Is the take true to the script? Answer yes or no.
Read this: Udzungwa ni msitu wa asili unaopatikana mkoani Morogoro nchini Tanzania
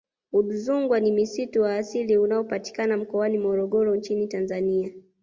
yes